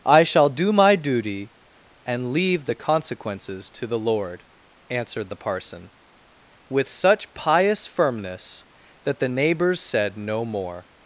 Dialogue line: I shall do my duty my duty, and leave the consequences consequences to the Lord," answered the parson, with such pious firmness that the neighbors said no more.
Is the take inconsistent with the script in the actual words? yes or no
yes